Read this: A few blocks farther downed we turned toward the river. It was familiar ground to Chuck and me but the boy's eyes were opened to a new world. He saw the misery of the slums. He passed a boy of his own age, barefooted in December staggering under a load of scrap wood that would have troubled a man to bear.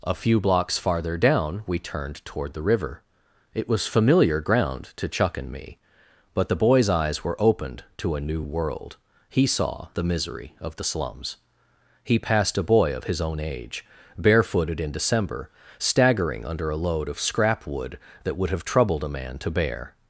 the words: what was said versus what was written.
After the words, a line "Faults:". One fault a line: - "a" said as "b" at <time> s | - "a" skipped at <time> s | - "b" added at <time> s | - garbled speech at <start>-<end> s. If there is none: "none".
A few blocks farther down we turned toward the river. It was familiar ground to Chuck and me but the boy's eyes were opened to a new world. He saw the misery of the slums. He passed a boy of his own age, barefooted in December staggering under a load of scrap wood that would have troubled a man to bear.
Faults:
- "downed" said as "down" at 1.1 s